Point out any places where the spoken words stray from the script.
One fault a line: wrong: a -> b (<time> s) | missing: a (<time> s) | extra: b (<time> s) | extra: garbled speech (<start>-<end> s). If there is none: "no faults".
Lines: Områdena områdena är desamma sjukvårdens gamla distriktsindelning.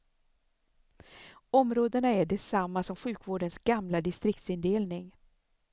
missing: områdena (2.1 s)
extra: som (2.8 s)